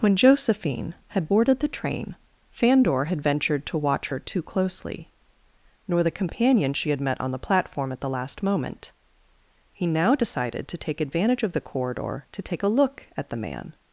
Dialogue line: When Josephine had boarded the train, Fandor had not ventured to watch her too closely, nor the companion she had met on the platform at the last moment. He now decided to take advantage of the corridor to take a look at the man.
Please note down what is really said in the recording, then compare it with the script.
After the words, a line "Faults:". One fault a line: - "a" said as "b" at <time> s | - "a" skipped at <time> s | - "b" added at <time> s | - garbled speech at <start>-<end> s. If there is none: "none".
When Josephine had boarded the train, Fandor had ventured to watch her too closely, nor the companion she had met on the platform at the last moment. He now decided to take advantage of the corridor to take a look at the man.
Faults:
- "not" skipped at 3.2 s